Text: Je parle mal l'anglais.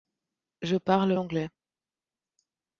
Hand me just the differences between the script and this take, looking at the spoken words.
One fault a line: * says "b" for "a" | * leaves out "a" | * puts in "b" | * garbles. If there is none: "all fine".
* leaves out "mal"